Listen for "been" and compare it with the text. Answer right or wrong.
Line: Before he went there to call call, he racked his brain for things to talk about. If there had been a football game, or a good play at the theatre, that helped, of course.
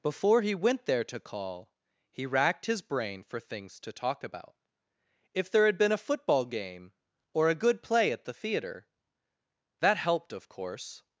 right